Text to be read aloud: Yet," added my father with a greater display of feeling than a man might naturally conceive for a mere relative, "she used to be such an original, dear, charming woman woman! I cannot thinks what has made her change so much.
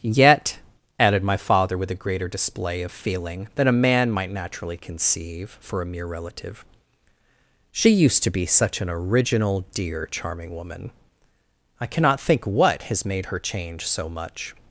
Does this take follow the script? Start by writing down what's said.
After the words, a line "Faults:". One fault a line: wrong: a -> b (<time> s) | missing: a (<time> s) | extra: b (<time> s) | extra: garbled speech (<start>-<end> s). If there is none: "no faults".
Yet," added my father with a greater display of feeling than a man might naturally conceive for a mere relative, "she used to be such an original, dear, charming woman! I cannot think what has made her change so much.
Faults:
missing: woman (10.9 s)
wrong: thinks -> think (12.2 s)